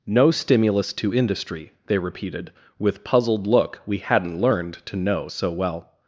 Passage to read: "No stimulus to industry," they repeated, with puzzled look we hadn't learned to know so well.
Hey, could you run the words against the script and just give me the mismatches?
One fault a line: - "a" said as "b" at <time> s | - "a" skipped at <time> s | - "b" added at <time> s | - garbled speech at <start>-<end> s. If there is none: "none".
none